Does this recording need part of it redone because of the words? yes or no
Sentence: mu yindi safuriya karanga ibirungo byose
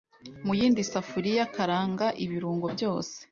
no